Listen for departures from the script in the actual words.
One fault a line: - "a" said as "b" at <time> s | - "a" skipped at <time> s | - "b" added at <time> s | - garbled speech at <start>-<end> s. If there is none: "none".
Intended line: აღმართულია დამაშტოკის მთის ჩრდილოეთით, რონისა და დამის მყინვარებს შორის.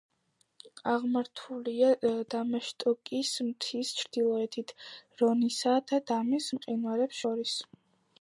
none